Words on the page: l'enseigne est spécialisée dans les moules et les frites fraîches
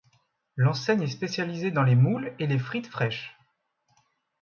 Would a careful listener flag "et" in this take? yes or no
no